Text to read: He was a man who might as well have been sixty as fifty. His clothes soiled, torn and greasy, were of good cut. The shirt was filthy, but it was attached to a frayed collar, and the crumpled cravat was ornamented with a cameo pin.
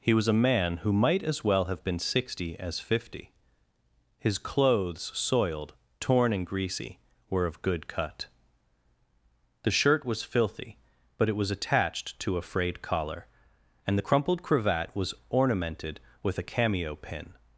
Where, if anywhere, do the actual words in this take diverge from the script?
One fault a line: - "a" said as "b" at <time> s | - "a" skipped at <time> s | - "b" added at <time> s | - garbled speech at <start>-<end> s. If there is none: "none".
none